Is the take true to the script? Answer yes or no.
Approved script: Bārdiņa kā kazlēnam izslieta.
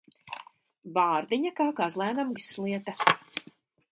yes